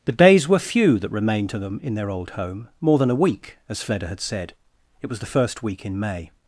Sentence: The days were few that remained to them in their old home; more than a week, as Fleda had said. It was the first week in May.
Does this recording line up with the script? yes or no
yes